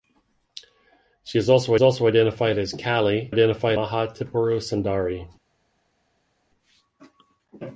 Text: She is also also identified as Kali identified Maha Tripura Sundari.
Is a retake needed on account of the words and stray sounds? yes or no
no